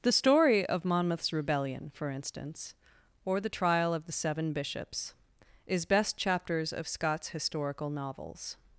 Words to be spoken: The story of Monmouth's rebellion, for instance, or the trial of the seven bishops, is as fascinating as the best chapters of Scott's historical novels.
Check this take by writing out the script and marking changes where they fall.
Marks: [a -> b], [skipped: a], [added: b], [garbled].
The story of Monmouth's rebellion, for instance, or the trial of the seven bishops, is [skipped: as fascinating as the] best chapters of Scott's historical novels.